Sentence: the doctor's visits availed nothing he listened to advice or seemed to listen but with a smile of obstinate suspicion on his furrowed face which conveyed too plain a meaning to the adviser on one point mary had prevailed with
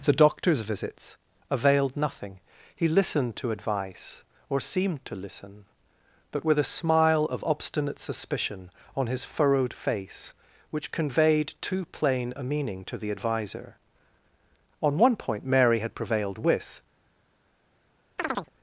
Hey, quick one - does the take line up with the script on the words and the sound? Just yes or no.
no